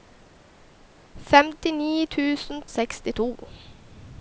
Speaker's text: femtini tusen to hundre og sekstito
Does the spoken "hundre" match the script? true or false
false